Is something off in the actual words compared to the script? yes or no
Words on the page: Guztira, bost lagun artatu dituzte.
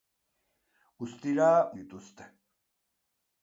yes